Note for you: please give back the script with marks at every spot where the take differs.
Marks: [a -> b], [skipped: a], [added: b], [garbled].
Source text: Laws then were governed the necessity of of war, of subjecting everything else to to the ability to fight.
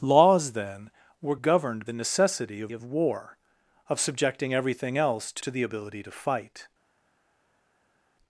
Laws then were governed the necessity of of war, of subjecting everything else to to the ability to fight.